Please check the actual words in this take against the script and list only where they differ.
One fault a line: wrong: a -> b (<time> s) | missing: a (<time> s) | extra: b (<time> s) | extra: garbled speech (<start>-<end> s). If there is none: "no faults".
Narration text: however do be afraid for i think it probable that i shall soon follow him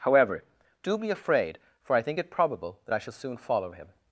no faults